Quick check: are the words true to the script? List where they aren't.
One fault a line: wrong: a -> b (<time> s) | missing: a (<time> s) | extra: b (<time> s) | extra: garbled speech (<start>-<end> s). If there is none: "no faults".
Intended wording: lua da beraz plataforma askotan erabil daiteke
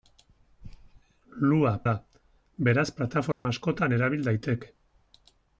no faults